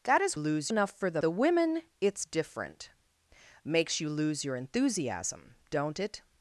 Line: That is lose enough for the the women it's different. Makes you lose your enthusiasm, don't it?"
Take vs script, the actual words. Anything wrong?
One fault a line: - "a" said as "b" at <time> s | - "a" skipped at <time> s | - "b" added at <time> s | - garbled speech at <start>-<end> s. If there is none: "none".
none